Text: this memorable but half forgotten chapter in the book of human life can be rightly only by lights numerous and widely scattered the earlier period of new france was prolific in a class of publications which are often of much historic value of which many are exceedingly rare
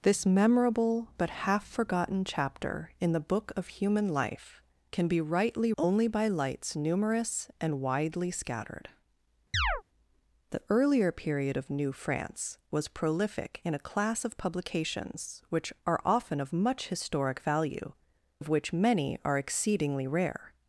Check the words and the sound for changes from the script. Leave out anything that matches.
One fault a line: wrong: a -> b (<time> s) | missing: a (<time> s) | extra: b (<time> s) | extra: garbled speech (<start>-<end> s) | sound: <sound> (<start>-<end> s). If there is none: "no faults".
sound: chirp (9.5-9.8 s)